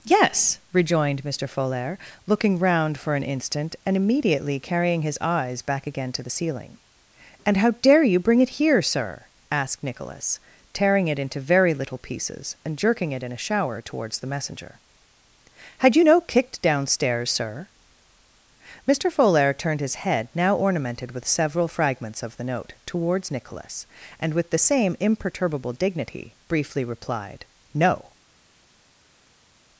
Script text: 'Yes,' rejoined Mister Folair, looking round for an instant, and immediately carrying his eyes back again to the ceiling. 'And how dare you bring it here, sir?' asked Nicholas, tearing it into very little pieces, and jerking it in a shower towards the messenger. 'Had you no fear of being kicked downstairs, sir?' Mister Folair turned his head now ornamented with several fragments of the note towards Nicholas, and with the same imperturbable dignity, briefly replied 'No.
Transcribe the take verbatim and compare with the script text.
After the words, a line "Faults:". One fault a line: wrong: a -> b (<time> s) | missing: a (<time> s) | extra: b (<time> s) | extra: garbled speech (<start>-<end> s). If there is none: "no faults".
'Yes,' rejoined Mister Folair, looking round for an instant, and immediately carrying his eyes back again to the ceiling. 'And how dare you bring it here, sir?' asked Nicholas, tearing it into very little pieces, and jerking it in a shower towards the messenger. 'Had you no kicked downstairs, sir?' Mister Folair turned his head now ornamented with several fragments of the note towards Nicholas, and with the same imperturbable dignity, briefly replied 'No.
Faults:
missing: fear of being (16.2 s)